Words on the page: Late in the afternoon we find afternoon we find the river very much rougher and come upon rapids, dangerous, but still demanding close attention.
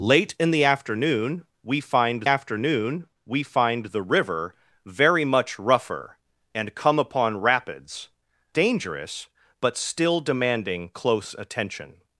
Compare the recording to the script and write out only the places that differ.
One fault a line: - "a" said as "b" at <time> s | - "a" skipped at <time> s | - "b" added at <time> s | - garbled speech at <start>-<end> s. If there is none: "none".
none